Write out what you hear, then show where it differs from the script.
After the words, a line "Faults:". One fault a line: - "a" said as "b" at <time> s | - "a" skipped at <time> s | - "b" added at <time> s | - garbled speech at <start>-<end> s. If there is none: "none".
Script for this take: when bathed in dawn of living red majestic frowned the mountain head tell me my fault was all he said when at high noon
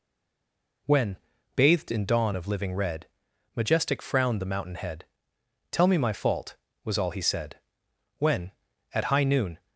when bathed in dawn of living red majestic frowned the mountain head tell me my fault was all he said when at high noon
Faults:
none